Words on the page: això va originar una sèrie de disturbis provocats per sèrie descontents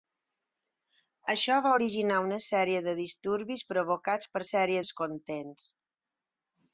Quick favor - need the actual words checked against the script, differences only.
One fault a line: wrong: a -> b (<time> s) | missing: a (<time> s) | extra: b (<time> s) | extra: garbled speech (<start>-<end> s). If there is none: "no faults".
no faults